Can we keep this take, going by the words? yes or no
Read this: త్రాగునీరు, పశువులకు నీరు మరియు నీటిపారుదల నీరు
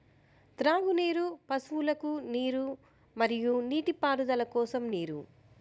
no